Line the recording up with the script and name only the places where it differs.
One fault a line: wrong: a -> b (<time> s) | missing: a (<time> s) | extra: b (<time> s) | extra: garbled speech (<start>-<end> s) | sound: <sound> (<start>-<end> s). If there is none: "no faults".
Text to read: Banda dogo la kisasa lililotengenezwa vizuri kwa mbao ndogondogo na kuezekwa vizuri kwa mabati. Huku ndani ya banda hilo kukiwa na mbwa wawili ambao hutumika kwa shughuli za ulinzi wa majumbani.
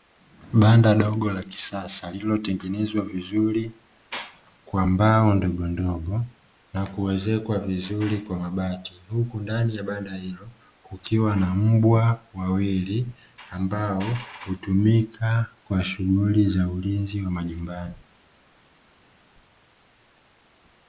no faults